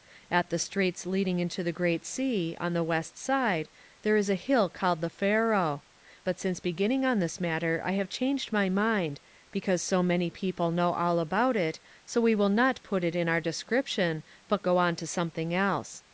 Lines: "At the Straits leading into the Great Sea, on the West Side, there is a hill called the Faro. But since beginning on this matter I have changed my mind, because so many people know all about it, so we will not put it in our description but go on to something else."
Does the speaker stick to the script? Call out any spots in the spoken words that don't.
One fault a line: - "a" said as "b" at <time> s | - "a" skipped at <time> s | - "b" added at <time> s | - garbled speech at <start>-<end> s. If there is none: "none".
none